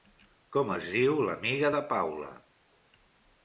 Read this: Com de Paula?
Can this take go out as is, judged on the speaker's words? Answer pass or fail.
fail